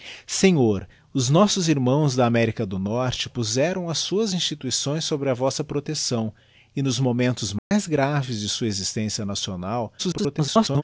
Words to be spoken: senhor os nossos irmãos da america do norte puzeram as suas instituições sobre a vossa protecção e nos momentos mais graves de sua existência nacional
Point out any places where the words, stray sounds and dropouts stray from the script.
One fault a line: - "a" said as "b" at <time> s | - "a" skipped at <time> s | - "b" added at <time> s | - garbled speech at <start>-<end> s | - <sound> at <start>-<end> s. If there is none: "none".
- dropout at 7.6-7.7 s
- garbled speech at 10.0-10.8 s